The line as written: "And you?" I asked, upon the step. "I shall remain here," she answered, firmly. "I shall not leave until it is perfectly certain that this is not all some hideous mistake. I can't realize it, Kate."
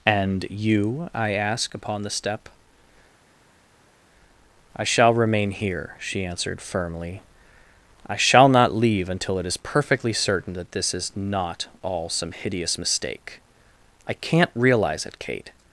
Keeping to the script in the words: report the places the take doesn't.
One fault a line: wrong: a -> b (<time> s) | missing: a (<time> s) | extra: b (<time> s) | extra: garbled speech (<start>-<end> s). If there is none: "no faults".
wrong: asked -> ask (1.3 s)